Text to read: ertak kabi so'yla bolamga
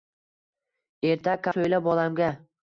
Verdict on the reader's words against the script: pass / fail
fail